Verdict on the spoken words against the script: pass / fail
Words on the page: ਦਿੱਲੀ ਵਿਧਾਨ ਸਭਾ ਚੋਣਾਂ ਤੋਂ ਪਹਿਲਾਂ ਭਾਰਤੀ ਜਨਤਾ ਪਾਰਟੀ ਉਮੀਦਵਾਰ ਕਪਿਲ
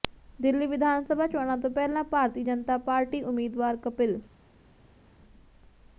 pass